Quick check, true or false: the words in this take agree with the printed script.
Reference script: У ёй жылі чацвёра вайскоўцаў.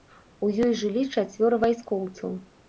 true